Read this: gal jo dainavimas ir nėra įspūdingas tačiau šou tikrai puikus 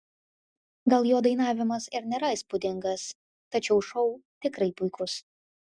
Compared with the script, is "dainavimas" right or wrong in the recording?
right